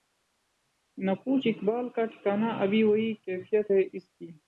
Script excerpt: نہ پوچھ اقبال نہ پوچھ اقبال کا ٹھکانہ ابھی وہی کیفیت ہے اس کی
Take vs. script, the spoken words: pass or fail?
fail